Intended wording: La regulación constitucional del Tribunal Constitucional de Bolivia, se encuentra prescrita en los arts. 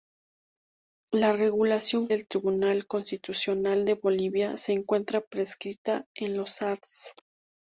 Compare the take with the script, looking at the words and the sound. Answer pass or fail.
fail